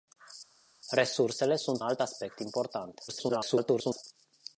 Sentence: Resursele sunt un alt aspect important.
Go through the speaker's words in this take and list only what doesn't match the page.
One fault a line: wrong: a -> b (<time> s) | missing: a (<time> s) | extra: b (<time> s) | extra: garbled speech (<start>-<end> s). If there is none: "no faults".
missing: un (1.8 s)
extra: garbled speech (3.1-4.0 s)